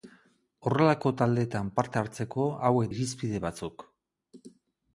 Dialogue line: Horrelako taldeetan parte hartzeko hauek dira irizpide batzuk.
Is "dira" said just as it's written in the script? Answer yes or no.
no